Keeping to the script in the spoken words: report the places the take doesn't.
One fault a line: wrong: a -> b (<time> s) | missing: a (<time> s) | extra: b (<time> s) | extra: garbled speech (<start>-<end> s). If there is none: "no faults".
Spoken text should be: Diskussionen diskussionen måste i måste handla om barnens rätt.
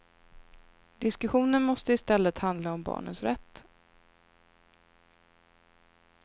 missing: diskussionen (1.6 s)
wrong: måste -> stället (2.0 s)